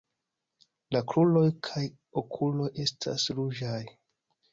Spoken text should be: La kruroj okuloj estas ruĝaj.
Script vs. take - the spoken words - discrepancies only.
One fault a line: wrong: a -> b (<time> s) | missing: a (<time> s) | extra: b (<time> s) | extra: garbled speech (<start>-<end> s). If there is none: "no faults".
extra: kaj (1.7 s)